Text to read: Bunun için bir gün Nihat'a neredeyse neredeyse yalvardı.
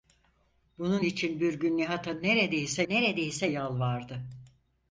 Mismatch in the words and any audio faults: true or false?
false